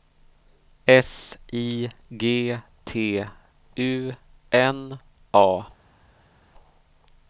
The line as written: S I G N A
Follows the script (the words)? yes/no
no